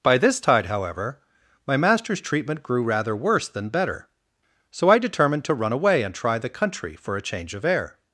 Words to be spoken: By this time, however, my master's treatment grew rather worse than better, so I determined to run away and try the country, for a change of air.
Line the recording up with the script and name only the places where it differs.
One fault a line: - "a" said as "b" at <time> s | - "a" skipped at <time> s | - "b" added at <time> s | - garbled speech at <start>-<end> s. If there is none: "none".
- "time" said as "tide" at 0.4 s